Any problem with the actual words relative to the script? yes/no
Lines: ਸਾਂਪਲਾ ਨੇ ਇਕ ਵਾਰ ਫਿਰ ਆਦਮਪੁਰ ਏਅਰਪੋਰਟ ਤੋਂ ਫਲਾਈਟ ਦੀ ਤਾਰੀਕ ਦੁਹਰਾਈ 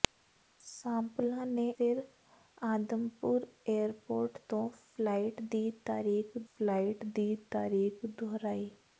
yes